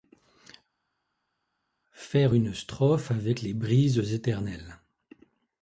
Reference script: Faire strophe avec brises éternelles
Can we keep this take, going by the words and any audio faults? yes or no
no